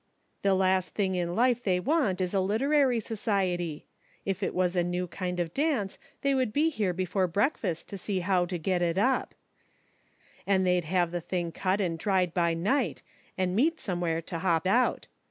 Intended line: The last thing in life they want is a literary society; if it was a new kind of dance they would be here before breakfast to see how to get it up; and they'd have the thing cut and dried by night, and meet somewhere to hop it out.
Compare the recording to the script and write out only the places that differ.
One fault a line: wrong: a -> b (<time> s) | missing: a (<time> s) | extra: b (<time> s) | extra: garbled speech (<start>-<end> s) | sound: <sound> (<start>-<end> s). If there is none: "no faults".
missing: it (14.7 s)